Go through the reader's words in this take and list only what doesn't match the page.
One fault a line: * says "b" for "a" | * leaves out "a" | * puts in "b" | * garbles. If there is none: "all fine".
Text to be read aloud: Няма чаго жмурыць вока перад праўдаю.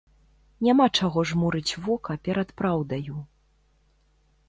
all fine